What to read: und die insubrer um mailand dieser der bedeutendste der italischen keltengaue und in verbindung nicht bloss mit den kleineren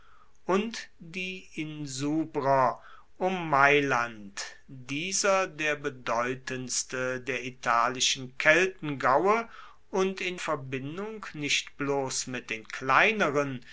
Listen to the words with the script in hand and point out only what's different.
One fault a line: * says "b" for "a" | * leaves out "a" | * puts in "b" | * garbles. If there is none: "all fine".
all fine